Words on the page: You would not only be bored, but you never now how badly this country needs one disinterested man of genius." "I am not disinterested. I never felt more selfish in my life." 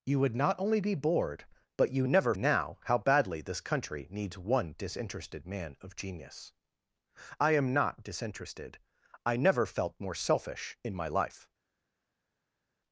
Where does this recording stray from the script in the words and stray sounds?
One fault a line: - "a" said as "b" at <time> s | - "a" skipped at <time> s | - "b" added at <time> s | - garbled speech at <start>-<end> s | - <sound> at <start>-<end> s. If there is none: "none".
none